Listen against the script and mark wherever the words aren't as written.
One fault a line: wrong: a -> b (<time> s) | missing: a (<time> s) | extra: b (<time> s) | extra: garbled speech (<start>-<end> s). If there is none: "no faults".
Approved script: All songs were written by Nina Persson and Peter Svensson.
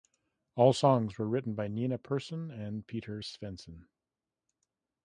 no faults